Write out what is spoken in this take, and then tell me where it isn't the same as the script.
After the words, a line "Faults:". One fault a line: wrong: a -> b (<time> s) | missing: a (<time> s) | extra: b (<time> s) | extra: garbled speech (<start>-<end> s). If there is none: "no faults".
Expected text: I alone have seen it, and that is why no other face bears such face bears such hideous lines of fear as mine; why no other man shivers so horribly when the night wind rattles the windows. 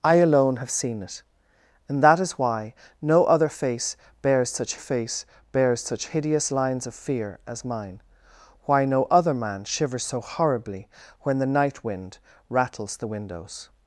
I alone have seen it, and that is why no other face bears such face bears such hideous lines of fear as mine; why no other man shivers so horribly when the night wind rattles the windows.
Faults:
no faults